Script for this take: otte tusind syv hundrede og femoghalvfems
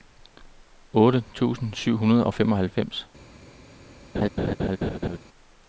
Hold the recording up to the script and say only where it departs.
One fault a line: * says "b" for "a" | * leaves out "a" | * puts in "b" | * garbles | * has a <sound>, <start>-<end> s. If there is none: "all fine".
* has a laugh, 4.1-5.2 s